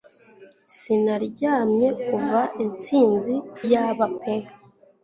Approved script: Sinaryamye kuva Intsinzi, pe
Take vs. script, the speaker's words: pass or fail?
fail